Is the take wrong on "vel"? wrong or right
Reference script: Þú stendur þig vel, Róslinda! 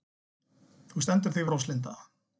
wrong